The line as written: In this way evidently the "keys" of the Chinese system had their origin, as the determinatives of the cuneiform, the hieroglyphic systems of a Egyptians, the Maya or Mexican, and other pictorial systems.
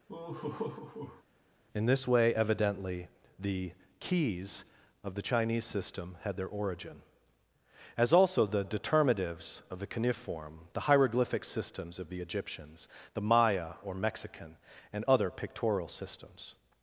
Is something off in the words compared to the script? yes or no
yes